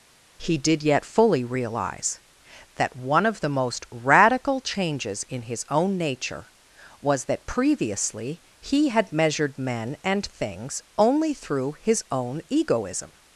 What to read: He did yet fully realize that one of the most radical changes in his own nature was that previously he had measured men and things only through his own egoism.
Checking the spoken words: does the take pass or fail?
pass